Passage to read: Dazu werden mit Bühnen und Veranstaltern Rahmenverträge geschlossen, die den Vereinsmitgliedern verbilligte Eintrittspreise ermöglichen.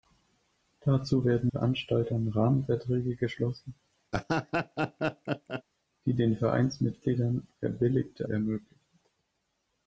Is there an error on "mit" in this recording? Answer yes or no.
yes